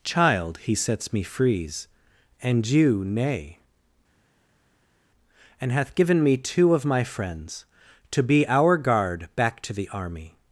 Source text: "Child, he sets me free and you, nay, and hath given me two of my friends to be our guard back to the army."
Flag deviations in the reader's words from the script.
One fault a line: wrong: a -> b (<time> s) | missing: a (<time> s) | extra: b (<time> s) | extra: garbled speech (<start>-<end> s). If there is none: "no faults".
wrong: free -> frees (1.2 s)